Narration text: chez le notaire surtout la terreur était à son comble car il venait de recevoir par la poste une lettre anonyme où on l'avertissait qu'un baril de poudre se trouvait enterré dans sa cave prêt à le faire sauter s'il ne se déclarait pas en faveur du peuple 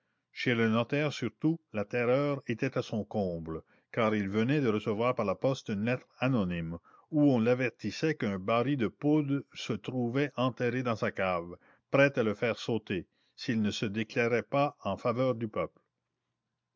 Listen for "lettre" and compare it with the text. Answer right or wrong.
right